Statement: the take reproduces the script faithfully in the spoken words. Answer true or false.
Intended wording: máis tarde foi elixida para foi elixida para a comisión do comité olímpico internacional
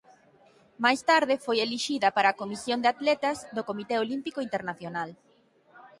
false